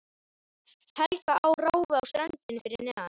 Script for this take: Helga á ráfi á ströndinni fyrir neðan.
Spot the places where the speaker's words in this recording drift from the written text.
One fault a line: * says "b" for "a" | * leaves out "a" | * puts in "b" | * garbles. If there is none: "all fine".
all fine